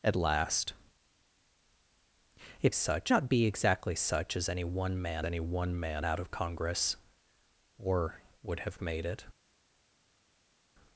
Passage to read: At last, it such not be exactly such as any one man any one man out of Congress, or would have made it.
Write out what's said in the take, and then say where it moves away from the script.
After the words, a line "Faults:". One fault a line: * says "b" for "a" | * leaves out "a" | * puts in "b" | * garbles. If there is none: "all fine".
At last, it such not be exactly such as any one man any one man out of Congress, or would have made it.
Faults:
all fine